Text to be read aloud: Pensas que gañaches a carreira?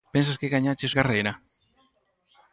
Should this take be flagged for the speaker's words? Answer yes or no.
no